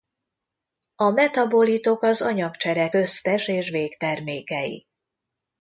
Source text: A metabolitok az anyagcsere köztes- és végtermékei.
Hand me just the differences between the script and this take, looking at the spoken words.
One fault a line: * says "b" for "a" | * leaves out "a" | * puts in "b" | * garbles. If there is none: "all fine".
all fine